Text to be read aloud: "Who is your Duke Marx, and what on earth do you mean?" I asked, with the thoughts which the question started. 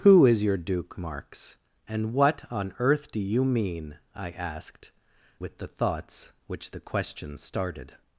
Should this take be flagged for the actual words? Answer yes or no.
no